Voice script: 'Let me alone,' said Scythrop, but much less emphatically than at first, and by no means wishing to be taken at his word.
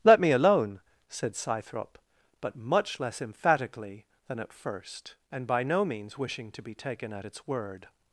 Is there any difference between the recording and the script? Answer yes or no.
yes